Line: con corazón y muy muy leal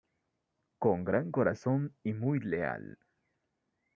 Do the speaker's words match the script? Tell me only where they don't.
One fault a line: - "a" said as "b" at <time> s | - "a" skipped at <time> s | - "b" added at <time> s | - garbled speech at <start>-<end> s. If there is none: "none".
- "gran" added at 1.0 s
- "muy" skipped at 2.4 s